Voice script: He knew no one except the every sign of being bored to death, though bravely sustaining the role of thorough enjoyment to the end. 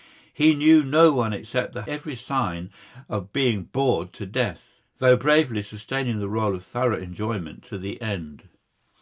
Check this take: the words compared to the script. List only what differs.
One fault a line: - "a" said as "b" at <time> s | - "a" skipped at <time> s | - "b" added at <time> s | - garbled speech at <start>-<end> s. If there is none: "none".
none